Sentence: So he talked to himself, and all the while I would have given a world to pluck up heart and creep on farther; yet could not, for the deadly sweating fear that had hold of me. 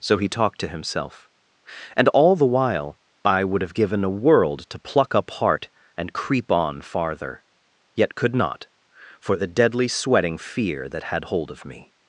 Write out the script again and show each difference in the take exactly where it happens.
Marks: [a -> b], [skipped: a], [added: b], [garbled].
So he talked to himself, and all the while I would have given a world to pluck up heart and creep on farther; yet could not, for the deadly sweating fear that had hold of me.